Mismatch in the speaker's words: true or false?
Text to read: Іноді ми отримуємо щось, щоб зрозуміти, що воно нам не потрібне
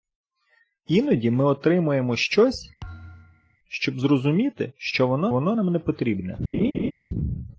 true